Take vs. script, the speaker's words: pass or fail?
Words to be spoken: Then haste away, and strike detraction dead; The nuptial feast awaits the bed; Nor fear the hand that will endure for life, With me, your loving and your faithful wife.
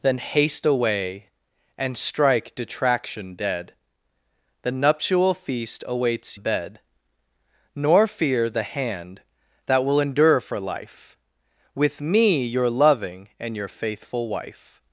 pass